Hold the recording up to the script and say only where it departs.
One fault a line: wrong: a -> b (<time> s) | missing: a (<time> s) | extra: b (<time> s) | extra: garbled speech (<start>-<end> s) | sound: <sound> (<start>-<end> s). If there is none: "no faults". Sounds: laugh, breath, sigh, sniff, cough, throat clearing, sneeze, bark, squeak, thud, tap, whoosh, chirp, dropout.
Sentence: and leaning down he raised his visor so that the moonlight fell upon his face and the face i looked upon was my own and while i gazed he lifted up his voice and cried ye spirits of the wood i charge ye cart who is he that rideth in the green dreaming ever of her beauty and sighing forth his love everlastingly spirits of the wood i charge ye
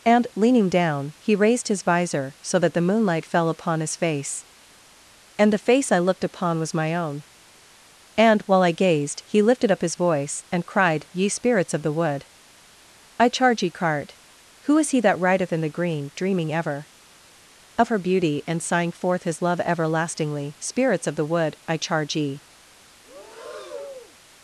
sound: breath (23.0-24.2 s)